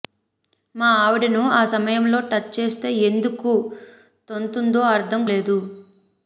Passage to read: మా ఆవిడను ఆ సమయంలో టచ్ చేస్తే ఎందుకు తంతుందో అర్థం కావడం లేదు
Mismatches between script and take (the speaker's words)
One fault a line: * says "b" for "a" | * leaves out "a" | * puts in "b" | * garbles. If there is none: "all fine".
* leaves out "కావడం"